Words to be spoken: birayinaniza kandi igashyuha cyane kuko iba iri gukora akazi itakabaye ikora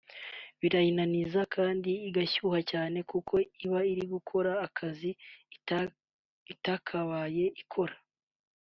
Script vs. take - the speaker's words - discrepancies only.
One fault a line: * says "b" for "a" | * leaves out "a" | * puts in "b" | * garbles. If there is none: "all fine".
all fine